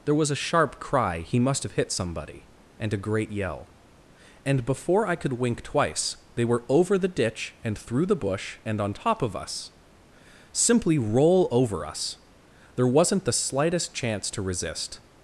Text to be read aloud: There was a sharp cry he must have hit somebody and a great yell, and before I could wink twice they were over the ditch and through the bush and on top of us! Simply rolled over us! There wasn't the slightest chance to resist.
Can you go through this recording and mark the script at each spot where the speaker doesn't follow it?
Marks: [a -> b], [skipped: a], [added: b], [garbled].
There was a sharp cry he must have hit somebody and a great yell, and before I could wink twice they were over the ditch and through the bush and on top of us! Simply [rolled -> roll] over us! There wasn't the slightest chance to resist.